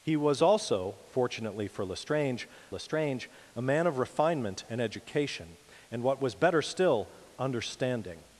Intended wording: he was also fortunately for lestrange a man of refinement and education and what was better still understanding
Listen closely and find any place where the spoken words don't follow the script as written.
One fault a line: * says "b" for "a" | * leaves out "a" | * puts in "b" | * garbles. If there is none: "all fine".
* puts in "lestrange"